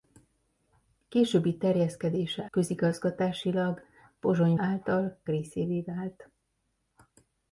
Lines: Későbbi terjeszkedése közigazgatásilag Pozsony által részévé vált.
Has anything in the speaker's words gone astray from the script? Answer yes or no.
no